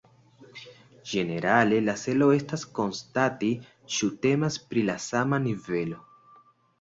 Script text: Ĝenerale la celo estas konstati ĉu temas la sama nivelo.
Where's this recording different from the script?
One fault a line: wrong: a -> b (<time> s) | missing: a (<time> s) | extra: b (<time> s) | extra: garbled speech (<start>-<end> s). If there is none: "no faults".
extra: pri (4.7 s)